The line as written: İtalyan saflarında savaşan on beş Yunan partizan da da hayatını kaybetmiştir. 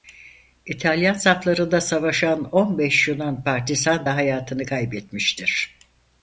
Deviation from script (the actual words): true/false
true